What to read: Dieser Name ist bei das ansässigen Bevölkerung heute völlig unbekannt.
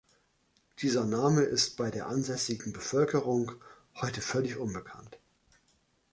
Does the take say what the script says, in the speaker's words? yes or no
no